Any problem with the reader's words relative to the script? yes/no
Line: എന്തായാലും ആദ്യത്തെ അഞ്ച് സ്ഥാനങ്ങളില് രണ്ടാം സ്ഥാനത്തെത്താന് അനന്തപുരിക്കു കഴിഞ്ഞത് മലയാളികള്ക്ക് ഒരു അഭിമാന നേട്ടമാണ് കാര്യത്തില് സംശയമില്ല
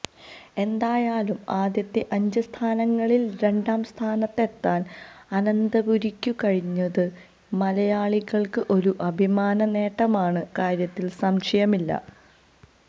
no